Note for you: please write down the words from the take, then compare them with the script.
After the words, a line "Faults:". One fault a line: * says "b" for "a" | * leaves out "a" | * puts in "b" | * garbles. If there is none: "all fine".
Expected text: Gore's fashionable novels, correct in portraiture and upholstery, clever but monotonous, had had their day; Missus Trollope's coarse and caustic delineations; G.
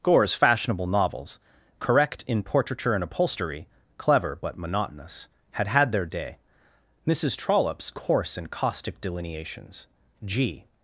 Gore's fashionable novels, correct in portraiture and upholstery, clever but monotonous, had had their day; Missus Trollope's coarse and caustic delineations; G.
Faults:
all fine